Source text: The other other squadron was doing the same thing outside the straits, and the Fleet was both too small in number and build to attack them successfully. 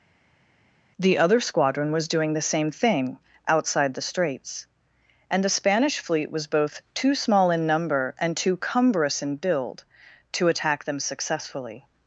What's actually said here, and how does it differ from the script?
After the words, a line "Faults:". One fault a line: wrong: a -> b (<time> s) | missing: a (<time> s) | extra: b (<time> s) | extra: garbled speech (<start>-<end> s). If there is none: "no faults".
The other squadron was doing the same thing outside the straits, and the Spanish fleet was both too small in number and too cumbrous in build to attack them successfully.
Faults:
missing: other (1.4 s)
extra: Spanish (5.5 s)
extra: too cumbrous in (8.4 s)